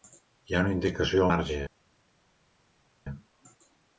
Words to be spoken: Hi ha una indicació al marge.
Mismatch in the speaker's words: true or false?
true